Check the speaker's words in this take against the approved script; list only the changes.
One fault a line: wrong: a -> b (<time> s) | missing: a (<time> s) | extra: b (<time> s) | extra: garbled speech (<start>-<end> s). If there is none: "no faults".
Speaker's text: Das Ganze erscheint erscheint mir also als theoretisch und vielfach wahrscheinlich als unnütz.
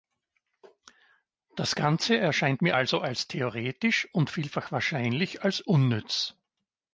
missing: erscheint (2.6 s)